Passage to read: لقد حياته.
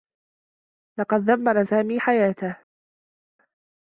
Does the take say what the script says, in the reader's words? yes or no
no